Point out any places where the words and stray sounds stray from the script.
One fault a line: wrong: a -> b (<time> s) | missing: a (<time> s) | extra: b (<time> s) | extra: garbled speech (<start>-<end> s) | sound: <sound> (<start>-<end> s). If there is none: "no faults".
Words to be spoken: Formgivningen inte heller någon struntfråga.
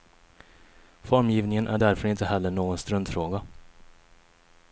extra: är därför (1.7 s)